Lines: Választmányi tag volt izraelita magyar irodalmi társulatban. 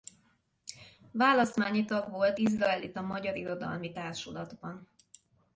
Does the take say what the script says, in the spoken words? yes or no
yes